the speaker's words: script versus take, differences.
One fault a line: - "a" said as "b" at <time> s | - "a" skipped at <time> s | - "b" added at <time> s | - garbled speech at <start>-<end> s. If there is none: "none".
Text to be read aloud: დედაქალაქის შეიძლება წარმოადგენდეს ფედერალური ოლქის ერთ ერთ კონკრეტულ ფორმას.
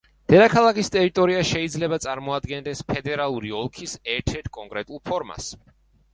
- "ტერიტორია" added at 0.9 s